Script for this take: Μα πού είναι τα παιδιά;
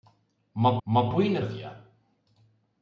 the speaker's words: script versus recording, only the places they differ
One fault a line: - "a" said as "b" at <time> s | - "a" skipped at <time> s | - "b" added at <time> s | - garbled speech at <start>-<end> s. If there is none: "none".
- "μα" added at 0.8 s
- "τα" skipped at 1.4 s